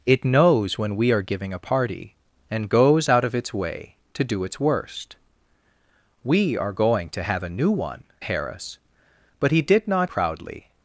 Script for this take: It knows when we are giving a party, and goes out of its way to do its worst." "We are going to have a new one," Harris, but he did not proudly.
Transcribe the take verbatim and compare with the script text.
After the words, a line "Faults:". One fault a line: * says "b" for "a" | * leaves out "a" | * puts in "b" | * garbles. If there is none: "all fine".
It knows when we are giving a party, and goes out of its way to do its worst." "We are going to have a new one," Harris, but he did not proudly.
Faults:
all fine